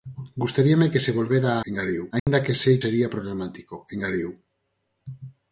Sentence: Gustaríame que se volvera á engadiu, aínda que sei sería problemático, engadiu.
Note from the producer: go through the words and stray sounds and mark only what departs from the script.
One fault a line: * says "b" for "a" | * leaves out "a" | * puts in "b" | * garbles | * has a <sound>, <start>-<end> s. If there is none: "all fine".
* has a dropout, 2.2-2.3 s